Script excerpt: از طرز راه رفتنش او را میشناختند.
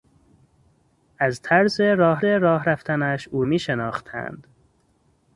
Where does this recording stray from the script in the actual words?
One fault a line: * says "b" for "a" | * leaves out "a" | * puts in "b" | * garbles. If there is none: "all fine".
* puts in "راه"
* leaves out "را"